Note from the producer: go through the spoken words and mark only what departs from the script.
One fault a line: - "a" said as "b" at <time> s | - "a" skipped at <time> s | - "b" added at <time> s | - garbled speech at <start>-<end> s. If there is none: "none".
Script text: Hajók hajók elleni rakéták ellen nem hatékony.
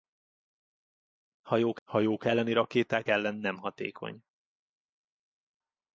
none